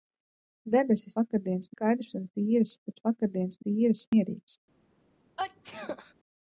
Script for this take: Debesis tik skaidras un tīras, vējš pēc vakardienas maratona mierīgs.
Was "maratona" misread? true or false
true